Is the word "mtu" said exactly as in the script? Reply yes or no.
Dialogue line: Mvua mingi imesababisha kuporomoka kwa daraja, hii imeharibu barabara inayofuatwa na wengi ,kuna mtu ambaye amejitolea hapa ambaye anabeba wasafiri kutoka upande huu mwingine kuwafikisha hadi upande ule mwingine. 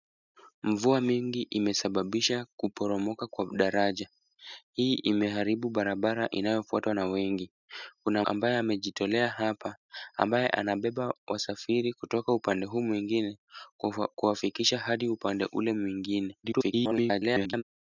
no